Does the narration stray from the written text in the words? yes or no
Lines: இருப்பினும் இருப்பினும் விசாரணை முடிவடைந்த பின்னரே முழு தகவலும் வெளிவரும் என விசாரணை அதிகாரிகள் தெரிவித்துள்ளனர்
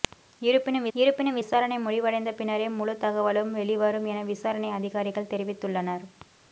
no